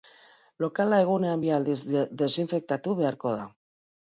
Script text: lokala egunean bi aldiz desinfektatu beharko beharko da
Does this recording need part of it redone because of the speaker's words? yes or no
yes